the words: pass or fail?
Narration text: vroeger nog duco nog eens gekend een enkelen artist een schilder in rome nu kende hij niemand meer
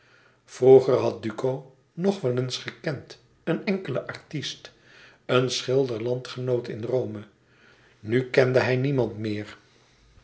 fail